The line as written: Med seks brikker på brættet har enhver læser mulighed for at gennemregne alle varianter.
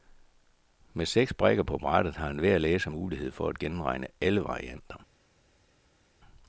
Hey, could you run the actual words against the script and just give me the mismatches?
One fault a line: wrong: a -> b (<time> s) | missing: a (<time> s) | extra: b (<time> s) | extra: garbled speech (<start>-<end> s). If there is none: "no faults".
no faults